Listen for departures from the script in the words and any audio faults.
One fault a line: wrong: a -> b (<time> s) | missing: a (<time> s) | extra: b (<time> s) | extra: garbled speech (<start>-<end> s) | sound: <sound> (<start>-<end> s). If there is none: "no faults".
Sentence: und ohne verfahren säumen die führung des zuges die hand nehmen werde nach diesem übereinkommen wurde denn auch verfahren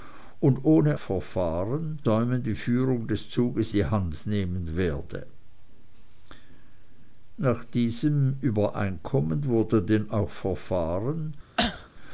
sound: cough (11.6-11.9 s)